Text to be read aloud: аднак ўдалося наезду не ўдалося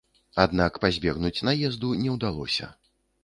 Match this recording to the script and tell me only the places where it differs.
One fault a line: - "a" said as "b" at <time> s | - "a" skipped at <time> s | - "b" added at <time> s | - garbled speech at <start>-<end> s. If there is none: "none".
- "ўдалося" said as "пазбегнуць" at 0.8 s